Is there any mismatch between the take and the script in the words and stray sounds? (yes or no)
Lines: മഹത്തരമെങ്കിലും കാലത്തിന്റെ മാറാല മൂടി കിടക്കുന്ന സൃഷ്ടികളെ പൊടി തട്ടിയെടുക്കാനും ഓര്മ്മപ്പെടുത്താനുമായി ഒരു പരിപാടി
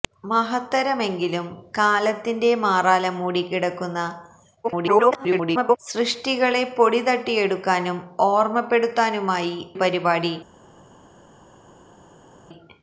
yes